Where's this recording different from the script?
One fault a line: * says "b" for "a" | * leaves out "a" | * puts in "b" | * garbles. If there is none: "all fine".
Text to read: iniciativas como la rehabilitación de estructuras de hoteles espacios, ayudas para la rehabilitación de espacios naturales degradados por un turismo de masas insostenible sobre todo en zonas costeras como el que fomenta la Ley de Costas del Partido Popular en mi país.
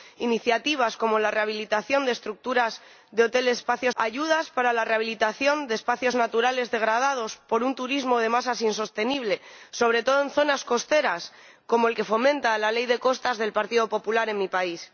all fine